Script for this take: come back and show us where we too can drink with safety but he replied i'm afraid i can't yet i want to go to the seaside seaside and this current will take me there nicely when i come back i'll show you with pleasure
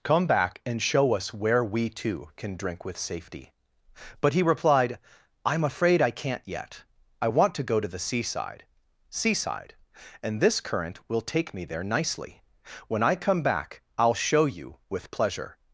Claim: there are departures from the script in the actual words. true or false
false